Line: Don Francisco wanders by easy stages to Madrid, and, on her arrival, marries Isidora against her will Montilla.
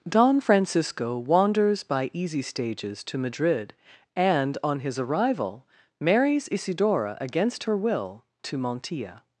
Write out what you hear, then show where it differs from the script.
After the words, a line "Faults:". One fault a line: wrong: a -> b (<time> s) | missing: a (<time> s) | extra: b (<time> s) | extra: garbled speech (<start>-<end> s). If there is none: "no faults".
Don Francisco wanders by easy stages to Madrid, and, on his arrival, marries Isidora against her will to Montilla.
Faults:
wrong: her -> his (4.8 s)
extra: to (8.4 s)